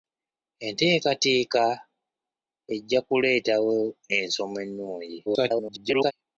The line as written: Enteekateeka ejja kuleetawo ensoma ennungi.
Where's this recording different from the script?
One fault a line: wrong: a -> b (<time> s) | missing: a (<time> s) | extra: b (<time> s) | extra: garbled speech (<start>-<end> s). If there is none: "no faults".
extra: garbled speech (5.3-6.1 s)